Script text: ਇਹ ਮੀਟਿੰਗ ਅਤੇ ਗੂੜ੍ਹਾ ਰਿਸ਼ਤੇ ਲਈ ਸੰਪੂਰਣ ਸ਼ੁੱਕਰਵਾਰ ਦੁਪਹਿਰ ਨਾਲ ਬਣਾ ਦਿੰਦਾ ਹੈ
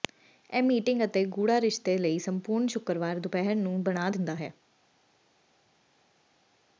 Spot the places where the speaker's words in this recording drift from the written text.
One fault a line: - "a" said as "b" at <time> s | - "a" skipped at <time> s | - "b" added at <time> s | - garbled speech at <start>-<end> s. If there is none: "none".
- "ਨਾਲ" said as "ਨੂੰ" at 3.5 s